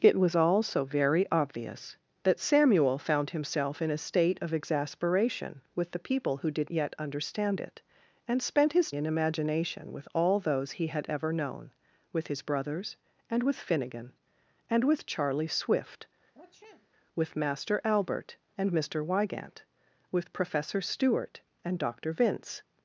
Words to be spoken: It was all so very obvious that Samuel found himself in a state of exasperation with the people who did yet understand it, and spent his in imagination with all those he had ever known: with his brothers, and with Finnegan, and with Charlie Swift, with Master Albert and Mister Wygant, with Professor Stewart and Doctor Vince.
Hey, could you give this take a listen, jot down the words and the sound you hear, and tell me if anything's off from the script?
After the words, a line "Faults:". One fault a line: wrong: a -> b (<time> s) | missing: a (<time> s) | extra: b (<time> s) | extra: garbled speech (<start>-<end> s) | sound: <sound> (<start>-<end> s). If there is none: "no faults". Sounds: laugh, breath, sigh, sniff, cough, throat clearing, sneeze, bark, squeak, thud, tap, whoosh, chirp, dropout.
It was all so very obvious that Samuel found himself in a state of exasperation with the people who did yet understand it, and spent his in imagination with all those he had ever known: with his brothers, and with Finnegan, and with Charlie Swift, with Master Albert and Mister Wygant, with Professor Stewart and Doctor Vince.
Faults:
sound: sniff (16.3-16.9 s)